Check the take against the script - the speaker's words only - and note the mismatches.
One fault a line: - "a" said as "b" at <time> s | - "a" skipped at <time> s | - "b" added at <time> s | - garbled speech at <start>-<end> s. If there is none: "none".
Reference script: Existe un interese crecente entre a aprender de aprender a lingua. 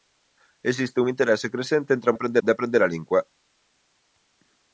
none